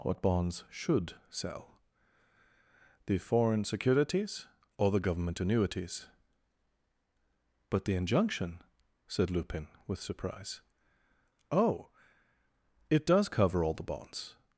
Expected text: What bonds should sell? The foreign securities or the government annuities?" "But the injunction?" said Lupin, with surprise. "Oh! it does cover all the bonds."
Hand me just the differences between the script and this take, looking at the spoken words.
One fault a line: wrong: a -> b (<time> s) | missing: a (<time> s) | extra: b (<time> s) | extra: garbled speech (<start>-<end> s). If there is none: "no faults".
no faults